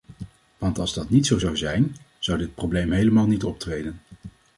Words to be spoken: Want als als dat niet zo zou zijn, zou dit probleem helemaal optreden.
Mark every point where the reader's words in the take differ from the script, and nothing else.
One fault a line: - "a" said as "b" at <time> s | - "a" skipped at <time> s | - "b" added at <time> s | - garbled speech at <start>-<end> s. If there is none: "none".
- "als" skipped at 0.9 s
- "niet" added at 3.3 s